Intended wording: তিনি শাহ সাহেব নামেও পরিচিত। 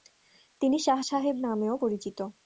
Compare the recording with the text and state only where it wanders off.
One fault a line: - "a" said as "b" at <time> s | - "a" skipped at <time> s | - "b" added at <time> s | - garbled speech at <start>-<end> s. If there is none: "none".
none